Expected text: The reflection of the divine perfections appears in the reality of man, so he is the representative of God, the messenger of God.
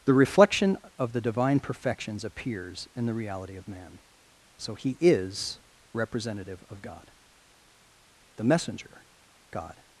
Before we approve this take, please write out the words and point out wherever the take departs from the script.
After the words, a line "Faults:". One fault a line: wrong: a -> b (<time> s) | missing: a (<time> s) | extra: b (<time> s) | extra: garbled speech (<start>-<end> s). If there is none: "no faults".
The reflection of the divine perfections appears in the reality of man, so he is representative of God, the messenger God.
Faults:
missing: the (5.6 s)
missing: of (9.1 s)